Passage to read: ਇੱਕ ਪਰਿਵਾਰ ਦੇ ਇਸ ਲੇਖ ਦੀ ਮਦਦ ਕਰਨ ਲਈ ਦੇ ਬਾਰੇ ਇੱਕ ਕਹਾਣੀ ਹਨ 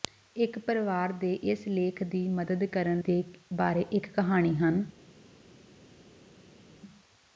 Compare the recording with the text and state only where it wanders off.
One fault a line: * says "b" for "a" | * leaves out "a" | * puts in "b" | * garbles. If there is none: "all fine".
* leaves out "ਲਈ"